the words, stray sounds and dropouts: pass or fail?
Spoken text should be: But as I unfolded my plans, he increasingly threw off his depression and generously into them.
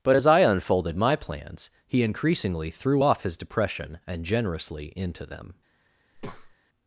fail